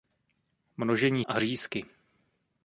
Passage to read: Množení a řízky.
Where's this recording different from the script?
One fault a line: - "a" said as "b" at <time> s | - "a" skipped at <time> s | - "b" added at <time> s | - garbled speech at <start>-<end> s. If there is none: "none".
none